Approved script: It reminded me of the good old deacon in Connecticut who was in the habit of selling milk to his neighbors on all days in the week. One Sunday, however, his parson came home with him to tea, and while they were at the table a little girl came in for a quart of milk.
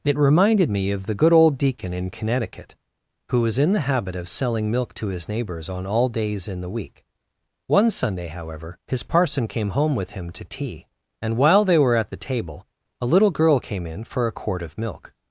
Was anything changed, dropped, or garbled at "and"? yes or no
no